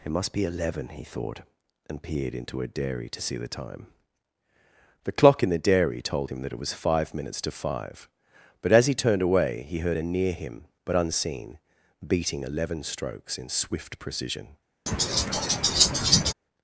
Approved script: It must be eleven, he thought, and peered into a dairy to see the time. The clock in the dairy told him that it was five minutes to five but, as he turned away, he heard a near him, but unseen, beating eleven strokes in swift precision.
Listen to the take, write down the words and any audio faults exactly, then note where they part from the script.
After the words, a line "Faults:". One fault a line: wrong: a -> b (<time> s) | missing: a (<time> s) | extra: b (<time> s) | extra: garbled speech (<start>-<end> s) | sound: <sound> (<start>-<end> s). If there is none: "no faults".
It must be eleven, he thought, and peered into a dairy to see the time. The clock in the dairy told him that it was five minutes to five but, as he turned away, he heard a near him, but unseen, beating eleven strokes in swift precision.
Faults:
sound: laugh (14.9-16.3 s)